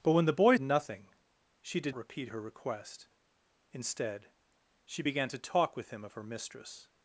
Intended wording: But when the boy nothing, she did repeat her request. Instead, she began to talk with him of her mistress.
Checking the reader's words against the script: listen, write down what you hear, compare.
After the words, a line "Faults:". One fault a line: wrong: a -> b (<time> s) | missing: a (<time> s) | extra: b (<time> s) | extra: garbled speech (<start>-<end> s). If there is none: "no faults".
But when the boy nothing, she did repeat her request. Instead, she began to talk with him of her mistress.
Faults:
no faults